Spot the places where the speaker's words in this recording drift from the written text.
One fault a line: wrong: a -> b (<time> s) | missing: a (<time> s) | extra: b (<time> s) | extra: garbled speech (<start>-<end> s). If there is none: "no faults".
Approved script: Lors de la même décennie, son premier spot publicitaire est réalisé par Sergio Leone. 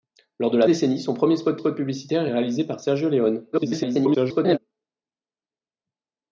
missing: même (0.7 s)
extra: spot (1.5 s)
extra: garbled speech (3.5-4.6 s)